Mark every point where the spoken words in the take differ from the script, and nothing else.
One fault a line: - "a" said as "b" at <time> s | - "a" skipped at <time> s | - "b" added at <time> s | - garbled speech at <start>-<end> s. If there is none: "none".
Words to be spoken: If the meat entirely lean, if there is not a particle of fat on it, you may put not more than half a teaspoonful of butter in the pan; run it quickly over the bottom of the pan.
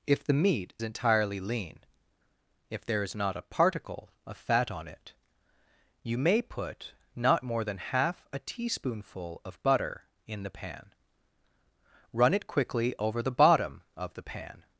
none